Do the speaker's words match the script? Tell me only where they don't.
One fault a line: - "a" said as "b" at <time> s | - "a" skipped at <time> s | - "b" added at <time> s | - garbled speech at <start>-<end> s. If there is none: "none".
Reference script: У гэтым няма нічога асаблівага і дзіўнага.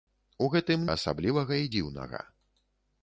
- "няма нічога" skipped at 0.9 s